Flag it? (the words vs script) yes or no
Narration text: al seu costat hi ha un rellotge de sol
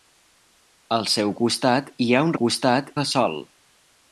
yes